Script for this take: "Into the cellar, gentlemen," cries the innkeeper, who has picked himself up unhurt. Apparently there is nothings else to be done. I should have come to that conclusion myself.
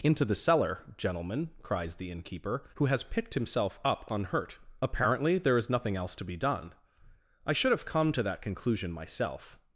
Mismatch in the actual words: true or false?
true